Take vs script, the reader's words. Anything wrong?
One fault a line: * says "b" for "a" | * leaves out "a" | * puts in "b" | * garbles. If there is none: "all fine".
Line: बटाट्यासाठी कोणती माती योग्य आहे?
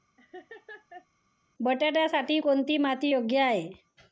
all fine